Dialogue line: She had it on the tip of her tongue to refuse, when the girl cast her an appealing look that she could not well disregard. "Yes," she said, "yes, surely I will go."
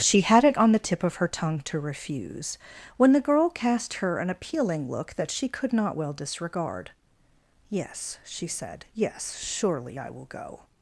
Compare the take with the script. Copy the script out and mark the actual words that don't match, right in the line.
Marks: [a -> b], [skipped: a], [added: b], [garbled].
She had it on the tip of her tongue to refuse, when the girl cast her an appealing look that she could not well disregard. "Yes," she said, "yes, surely I will go."